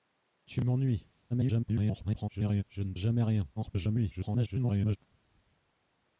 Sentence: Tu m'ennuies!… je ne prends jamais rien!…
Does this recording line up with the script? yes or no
no